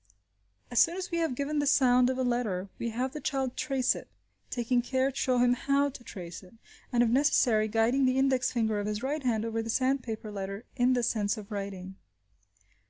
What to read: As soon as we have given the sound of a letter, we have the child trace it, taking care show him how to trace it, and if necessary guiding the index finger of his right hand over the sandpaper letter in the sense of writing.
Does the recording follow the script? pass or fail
pass